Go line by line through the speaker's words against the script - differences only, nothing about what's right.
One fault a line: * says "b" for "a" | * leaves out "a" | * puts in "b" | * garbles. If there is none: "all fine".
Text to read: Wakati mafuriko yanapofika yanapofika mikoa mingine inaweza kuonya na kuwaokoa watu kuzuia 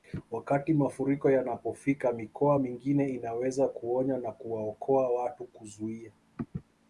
* leaves out "yanapofika"